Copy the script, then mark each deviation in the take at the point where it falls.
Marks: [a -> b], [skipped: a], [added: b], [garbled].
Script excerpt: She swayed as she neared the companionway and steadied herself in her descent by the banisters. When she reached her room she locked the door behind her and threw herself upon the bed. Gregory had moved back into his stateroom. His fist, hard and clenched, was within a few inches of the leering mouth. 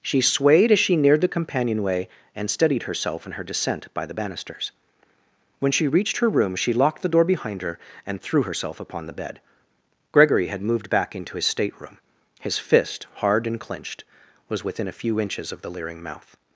She swayed as she neared the companionway and steadied herself in her descent by the banisters. When she reached her room she locked the door behind her and threw herself upon the bed. Gregory had moved back into his stateroom. His fist, hard and clenched, was within a few inches of the leering mouth.